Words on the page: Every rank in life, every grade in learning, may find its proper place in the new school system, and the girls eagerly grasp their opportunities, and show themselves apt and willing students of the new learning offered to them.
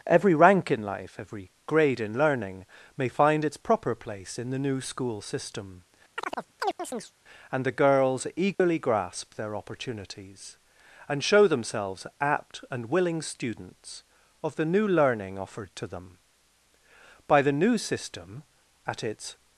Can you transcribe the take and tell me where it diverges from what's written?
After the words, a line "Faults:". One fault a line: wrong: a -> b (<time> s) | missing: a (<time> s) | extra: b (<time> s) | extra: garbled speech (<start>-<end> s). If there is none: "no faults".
Every rank in life, every grade in learning, may find its proper place in the new school system, and the girls eagerly grasp their opportunities, and show themselves apt and willing students of the new learning offered to them. By the new system, at its
Faults:
extra: By the new system at its (17.3 s)